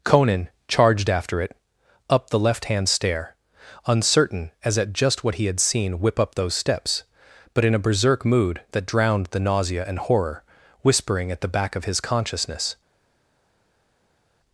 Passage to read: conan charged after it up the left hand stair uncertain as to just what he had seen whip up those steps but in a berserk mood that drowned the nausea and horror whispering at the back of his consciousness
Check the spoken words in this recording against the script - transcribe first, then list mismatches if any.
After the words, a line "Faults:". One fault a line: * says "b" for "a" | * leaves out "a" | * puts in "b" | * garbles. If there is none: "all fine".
conan charged after it up the left hand stair uncertain as at just what he had seen whip up those steps but in a berserk mood that drowned the nausea and horror whispering at the back of his consciousness
Faults:
* says "at" for "to"